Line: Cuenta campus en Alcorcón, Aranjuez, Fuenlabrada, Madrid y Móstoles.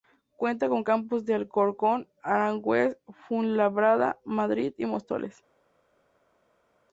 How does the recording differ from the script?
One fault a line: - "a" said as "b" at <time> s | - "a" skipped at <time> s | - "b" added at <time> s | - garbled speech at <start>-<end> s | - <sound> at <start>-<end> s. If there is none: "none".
- "con" added at 0.7 s